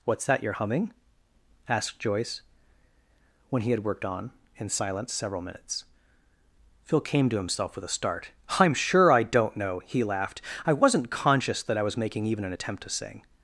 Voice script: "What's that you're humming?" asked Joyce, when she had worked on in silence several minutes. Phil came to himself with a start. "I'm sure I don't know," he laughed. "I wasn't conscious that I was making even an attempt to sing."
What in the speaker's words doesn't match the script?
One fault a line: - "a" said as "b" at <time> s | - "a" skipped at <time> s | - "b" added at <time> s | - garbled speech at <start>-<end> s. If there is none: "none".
- "she" said as "he" at 3.6 s